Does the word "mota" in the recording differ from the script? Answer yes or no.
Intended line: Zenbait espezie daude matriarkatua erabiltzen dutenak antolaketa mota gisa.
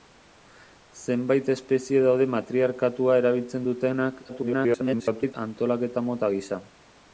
no